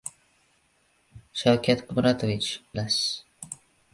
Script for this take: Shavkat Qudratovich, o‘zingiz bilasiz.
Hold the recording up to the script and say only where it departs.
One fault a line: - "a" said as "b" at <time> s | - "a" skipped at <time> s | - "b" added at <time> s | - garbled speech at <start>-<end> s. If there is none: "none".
- "o‘zingiz" skipped at 2.5 s